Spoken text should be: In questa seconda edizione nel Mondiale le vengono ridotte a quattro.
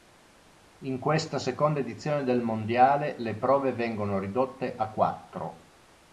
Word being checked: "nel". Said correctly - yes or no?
no